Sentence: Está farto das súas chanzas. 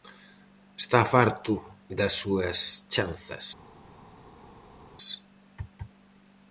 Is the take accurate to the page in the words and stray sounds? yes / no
yes